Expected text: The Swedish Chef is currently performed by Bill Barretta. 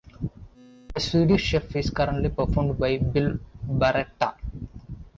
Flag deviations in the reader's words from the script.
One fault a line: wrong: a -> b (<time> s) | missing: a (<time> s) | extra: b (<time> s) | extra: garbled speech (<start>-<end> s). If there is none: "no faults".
no faults